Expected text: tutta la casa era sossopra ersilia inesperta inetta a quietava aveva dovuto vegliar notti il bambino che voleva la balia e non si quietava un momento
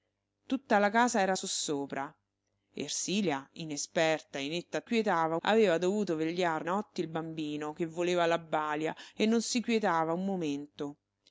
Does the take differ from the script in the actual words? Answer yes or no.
no